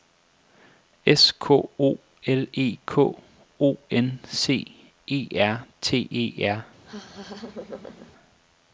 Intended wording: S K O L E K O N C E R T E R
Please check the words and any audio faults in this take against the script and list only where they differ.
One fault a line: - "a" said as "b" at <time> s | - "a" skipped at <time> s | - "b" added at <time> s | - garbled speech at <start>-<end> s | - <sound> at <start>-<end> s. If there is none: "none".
- laugh at 6.8-8.1 s